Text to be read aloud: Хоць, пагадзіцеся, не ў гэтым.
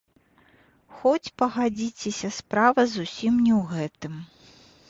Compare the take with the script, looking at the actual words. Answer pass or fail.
fail